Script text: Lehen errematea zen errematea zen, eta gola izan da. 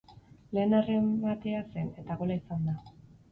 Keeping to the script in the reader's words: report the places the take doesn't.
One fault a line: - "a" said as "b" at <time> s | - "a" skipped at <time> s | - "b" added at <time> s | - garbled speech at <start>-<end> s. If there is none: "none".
- "errematea zen" skipped at 1.9 s